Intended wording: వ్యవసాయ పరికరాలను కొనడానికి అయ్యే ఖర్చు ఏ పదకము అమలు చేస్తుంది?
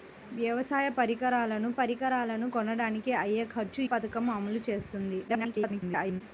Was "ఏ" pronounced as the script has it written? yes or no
no